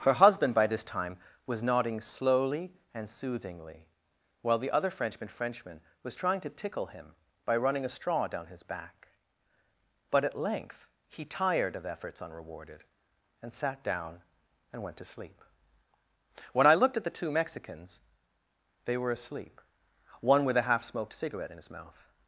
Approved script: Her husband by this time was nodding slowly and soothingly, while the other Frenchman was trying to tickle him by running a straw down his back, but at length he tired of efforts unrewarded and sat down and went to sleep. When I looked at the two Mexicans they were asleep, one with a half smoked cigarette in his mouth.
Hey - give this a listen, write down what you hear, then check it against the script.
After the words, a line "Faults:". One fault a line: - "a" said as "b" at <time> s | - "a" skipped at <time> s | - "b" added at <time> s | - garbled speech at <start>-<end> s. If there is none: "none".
Her husband by this time was nodding slowly and soothingly, while the other Frenchman Frenchman was trying to tickle him by running a straw down his back, but at length he tired of efforts unrewarded and sat down and went to sleep. When I looked at the two Mexicans they were asleep, one with a half smoked cigarette in his mouth.
Faults:
- "Frenchman" added at 5.3 s